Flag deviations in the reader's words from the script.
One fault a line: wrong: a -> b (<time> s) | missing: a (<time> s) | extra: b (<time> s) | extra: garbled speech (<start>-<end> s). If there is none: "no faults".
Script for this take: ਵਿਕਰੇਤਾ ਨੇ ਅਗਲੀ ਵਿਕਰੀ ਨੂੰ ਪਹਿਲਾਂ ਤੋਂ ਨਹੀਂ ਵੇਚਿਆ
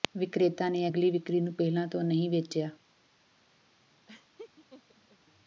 no faults